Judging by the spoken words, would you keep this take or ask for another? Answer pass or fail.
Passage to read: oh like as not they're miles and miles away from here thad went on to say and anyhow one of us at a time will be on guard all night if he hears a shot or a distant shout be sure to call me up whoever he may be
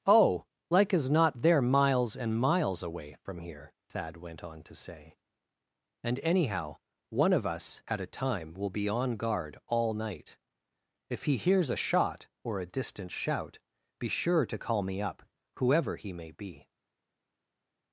pass